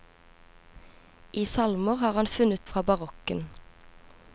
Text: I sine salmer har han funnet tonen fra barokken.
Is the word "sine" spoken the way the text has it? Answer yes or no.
no